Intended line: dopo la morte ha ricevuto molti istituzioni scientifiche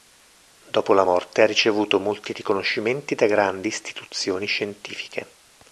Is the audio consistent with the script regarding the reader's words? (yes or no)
no